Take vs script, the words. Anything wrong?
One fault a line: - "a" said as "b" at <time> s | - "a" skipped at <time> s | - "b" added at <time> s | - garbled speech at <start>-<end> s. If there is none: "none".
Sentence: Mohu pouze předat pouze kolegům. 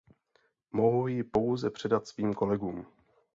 - "ji" added at 1.1 s
- "pouze" said as "svým" at 2.1 s